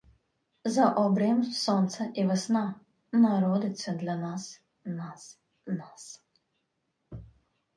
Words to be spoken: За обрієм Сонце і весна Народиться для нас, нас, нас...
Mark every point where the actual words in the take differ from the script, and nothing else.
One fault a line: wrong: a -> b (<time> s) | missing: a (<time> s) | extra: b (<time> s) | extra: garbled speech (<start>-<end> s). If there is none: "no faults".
no faults